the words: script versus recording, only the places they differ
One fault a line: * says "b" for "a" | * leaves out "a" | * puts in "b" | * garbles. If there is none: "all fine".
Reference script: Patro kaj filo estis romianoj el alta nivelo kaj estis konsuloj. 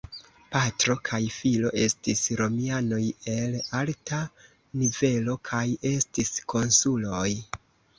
all fine